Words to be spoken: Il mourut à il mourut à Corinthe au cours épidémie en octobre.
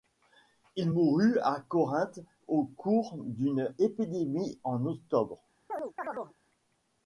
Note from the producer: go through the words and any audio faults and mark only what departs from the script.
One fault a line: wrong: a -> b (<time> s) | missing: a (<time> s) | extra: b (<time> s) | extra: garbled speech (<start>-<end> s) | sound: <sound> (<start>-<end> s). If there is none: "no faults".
missing: il mourut à (1.6 s)
extra: d'une (3.2 s)
sound: chirp (5.7-6.3 s)